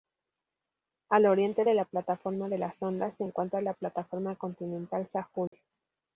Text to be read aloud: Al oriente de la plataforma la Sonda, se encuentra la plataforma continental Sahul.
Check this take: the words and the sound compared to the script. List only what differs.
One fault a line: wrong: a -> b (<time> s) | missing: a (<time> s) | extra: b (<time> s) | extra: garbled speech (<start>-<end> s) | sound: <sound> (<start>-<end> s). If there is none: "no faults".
extra: de (2.5 s)
sound: dropout (5.5-5.5 s)